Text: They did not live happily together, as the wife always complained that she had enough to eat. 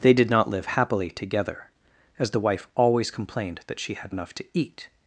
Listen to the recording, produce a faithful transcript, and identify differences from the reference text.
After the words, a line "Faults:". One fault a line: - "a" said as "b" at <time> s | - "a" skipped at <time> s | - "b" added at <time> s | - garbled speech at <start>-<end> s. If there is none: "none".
They did not live happily together, as the wife always complained that she had enough to eat.
Faults:
none